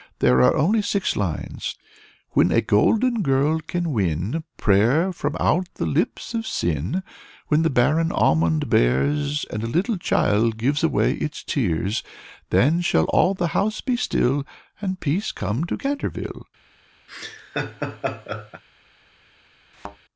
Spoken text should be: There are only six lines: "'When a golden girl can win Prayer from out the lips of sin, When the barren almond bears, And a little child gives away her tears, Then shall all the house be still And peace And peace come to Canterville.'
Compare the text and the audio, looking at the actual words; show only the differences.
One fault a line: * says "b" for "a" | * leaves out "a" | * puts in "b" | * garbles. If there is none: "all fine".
* says "its" for "her"
* leaves out "And peace"